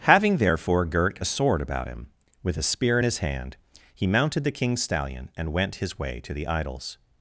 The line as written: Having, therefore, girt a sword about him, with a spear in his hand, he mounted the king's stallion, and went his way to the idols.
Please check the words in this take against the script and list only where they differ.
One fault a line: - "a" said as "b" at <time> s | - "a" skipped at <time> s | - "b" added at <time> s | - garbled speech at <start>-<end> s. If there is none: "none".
none